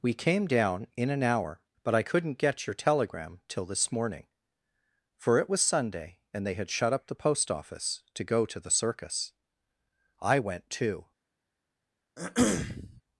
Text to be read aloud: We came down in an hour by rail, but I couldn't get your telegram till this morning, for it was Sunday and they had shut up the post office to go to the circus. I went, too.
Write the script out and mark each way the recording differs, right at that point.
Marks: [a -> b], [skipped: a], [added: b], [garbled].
We came down in an hour [skipped: by rail,] but I couldn't get your telegram till this morning, for it was Sunday and they had shut up the post office to go to the circus. I went, too.